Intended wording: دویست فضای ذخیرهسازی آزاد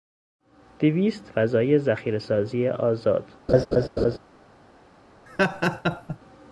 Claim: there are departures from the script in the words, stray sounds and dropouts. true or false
true